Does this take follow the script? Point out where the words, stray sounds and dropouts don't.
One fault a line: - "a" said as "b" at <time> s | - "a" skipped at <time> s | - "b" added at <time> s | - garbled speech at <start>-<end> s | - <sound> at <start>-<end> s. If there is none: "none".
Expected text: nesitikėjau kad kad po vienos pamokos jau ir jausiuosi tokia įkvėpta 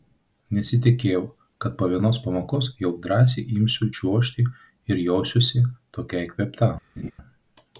- "kad" skipped at 1.8 s
- "drąsiai imsiu čiuožti" added at 3.0 s
- laugh at 7.0-7.1 s